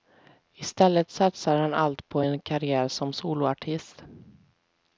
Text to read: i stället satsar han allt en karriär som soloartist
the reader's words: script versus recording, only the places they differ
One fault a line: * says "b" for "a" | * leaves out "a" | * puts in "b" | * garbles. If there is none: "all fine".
* puts in "på"